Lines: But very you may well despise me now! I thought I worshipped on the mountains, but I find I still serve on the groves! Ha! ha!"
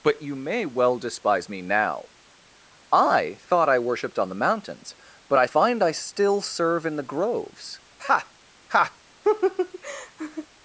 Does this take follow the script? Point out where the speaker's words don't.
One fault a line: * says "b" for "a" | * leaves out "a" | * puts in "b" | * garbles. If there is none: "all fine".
* leaves out "very"
* says "in" for "on"